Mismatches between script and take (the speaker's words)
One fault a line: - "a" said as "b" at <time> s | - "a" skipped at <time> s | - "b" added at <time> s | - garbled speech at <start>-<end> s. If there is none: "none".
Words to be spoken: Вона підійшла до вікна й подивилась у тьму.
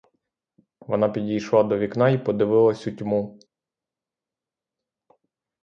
none